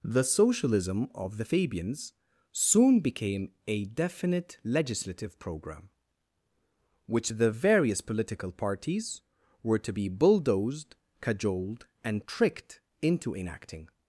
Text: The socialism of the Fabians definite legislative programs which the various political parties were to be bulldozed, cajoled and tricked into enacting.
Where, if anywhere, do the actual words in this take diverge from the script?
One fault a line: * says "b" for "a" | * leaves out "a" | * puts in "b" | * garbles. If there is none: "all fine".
* puts in "soon became a"
* says "program" for "programs"